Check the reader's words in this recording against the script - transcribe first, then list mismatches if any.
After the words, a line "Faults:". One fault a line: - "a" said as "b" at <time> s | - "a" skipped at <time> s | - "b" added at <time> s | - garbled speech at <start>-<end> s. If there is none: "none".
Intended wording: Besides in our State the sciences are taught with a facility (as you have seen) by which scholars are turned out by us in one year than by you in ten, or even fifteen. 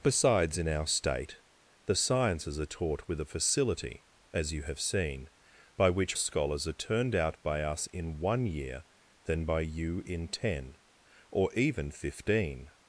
Besides in our State the sciences are taught with a facility (as you have seen) by which scholars are turned out by us in one year than by you in ten, or even fifteen.
Faults:
none